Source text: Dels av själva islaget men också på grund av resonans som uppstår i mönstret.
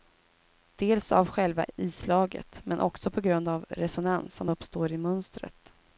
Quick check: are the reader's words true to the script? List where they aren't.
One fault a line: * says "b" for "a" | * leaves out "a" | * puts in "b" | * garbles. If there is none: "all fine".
all fine